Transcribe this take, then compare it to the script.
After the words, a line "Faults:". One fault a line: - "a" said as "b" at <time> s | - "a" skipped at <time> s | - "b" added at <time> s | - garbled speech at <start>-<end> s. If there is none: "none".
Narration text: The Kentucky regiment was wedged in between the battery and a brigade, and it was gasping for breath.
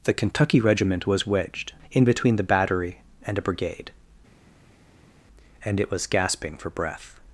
The Kentucky regiment was wedged in between the battery and a brigade, and it was gasping for breath.
Faults:
none